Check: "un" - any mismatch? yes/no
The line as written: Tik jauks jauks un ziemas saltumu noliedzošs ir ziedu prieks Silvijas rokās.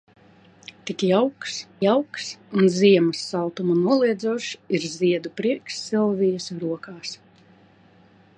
no